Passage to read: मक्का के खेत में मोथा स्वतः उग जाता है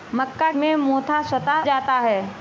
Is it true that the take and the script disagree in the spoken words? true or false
true